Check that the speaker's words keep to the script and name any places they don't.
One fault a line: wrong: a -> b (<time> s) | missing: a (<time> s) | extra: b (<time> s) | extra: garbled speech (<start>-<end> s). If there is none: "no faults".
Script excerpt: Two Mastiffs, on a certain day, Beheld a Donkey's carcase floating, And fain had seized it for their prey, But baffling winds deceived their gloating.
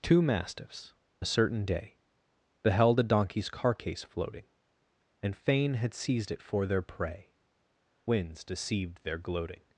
missing: on (0.9 s)
missing: But baffling (7.3 s)